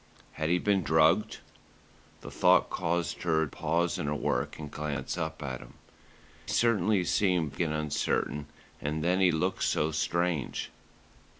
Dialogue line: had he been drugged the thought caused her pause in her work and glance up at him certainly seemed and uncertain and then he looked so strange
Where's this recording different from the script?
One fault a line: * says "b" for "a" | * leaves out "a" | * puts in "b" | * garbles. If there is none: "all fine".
all fine